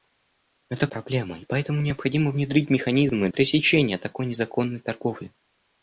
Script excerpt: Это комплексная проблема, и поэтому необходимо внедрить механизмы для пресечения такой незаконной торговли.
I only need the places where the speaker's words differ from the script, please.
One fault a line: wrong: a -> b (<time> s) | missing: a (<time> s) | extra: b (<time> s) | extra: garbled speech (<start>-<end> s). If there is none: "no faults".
missing: комплексная (0.9 s)
missing: для (3.3 s)